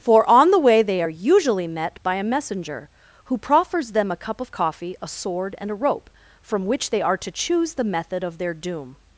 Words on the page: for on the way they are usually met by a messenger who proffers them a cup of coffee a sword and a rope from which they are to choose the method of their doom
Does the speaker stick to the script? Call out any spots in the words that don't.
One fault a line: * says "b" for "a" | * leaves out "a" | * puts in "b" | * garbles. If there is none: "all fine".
all fine